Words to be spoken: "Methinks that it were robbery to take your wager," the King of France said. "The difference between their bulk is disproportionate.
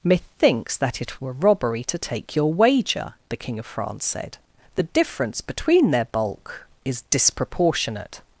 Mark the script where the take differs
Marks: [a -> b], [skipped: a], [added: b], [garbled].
"Methinks that it were robbery to take your wager," the King of France said. "The difference between their bulk is disproportionate.